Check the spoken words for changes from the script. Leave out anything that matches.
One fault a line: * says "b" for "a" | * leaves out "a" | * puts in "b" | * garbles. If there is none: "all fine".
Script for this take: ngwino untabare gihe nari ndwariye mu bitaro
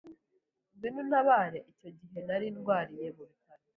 * puts in "icyo"